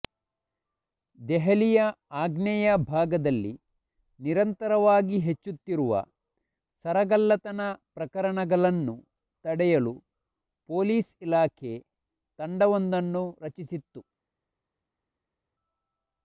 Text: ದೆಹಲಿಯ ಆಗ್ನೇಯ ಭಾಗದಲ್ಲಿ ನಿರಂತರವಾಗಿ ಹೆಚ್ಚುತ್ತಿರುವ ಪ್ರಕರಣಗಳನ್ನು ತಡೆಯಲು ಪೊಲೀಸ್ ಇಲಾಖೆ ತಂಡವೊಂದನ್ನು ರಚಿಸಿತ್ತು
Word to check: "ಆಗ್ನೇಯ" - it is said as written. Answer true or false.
true